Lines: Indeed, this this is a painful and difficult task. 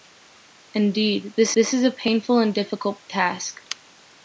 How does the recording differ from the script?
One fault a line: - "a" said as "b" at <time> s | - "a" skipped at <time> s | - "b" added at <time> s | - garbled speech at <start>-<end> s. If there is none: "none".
none